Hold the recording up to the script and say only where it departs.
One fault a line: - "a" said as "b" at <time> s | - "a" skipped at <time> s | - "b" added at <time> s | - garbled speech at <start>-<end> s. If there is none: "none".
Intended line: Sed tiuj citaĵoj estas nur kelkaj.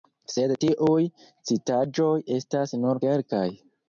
none